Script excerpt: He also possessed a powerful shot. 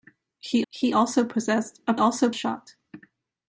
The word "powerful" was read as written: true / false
false